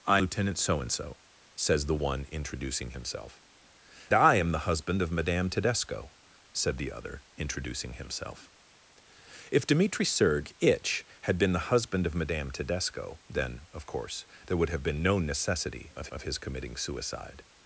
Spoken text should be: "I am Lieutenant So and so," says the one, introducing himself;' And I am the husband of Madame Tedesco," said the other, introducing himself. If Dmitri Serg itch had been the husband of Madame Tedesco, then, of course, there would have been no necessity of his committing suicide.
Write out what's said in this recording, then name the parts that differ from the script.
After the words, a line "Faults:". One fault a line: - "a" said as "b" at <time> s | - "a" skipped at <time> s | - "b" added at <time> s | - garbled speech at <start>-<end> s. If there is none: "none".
"I Lieutenant So and so," says the one, introducing himself;' I am the husband of Madame Tedesco," said the other, introducing himself. If Dmitri Serg itch had been the husband of Madame Tedesco, then, of course, there would have been no necessity of of his committing suicide.
Faults:
- "am" skipped at 0.2 s
- "And" skipped at 3.4 s
- "of" added at 16.1 s